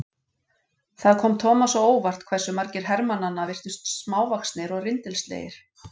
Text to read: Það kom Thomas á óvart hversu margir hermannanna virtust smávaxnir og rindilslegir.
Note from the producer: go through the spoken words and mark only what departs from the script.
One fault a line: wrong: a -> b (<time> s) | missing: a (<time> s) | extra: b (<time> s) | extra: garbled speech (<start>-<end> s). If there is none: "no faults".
no faults